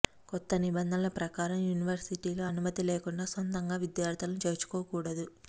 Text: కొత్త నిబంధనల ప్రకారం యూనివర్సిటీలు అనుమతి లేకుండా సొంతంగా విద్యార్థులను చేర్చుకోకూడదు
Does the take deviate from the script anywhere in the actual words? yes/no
no